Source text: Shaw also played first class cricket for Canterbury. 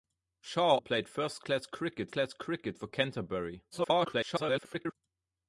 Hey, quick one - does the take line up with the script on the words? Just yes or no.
no